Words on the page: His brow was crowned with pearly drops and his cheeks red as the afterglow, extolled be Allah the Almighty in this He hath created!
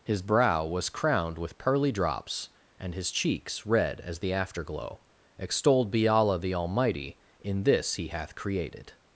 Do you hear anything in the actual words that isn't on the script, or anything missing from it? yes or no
no